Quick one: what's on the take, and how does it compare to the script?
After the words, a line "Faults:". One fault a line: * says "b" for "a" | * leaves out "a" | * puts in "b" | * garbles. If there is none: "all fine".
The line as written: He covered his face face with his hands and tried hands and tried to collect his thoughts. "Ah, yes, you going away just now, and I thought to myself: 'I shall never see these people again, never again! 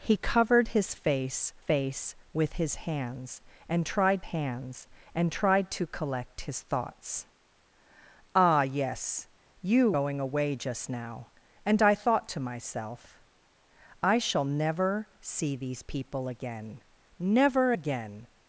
He covered his face face with his hands and tried hands and tried to collect his thoughts. "Ah, yes, you going away just now, and I thought to myself: 'I shall never see these people again, never again!
Faults:
all fine